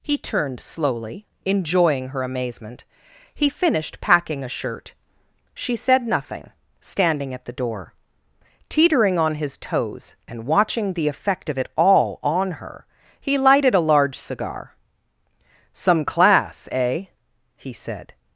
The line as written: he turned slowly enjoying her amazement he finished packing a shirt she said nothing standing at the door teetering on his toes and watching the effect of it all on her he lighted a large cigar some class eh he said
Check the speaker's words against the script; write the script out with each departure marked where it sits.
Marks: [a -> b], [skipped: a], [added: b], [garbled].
he turned slowly enjoying her amazement he finished packing a shirt she said nothing standing at the door teetering on his toes and watching the effect of it all on her he lighted a large cigar some class eh he said